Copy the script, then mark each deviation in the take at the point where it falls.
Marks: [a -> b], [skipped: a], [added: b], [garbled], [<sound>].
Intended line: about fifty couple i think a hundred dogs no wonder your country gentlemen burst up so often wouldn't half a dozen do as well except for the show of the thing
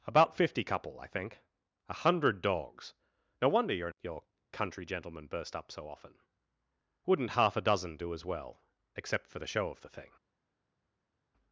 about fifty couple i think a hundred dogs no wonder your [added: your] country gentlemen burst up so often wouldn't half a dozen do as well except for the show of the thing